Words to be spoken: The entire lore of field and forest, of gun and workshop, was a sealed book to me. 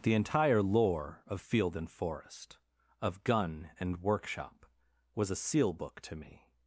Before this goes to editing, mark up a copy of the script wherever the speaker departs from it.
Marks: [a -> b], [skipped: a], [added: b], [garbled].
The entire lore of field and forest, of gun and workshop, was a [sealed -> seal] book to me.